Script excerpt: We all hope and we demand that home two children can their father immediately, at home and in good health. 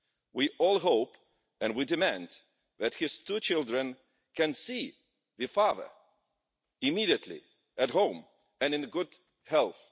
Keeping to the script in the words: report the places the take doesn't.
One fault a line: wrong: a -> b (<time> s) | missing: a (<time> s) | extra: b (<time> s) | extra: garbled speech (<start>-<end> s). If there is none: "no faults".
wrong: home -> his (3.0 s)
extra: see (4.5 s)